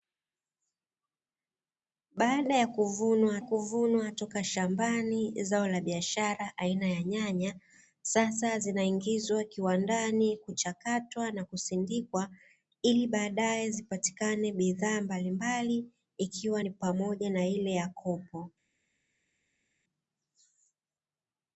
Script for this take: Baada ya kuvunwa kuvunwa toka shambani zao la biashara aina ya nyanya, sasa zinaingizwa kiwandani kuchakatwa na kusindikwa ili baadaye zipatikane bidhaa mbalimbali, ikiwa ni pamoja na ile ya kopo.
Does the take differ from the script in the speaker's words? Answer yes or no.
no